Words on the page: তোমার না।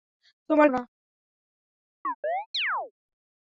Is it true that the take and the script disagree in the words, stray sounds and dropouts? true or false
true